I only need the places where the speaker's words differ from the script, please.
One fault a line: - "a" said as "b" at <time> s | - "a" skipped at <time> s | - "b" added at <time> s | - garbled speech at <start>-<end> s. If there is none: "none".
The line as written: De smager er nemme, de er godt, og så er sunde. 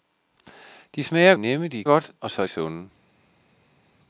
none